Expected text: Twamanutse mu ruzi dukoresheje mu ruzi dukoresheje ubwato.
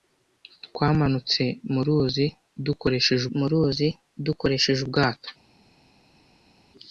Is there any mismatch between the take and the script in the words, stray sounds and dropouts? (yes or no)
no